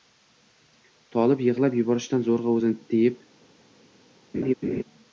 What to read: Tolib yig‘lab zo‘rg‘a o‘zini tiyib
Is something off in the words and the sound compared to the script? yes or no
yes